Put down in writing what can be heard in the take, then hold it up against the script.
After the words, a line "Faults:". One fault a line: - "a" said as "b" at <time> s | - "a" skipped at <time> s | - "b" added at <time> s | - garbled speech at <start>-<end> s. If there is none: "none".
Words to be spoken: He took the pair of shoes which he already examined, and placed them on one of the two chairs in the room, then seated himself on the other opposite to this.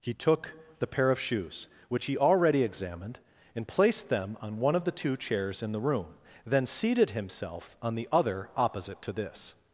He took the pair of shoes which he already examined, and placed them on one of the two chairs in the room, then seated himself on the other opposite to this.
Faults:
none